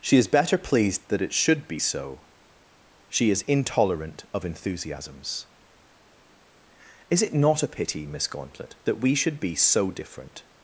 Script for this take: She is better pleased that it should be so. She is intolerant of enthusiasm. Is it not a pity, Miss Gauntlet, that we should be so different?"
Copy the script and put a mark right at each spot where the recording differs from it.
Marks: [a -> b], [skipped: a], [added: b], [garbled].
She is better pleased that it should be so. She is intolerant of [enthusiasm. -> enthusiasms] Is it not a pity, Miss Gauntlet, that we should be so different?"